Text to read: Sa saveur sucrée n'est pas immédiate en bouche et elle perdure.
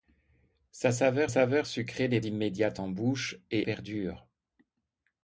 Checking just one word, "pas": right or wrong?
wrong